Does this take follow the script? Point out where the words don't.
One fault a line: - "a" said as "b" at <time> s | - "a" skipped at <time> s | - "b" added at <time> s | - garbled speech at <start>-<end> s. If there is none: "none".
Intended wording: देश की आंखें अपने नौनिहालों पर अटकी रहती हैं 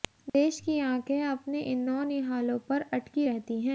- "इन" added at 1.6 s